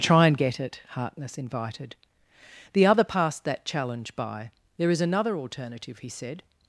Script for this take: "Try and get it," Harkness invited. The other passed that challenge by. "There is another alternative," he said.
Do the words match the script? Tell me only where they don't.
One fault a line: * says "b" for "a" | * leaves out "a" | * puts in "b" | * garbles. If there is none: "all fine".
all fine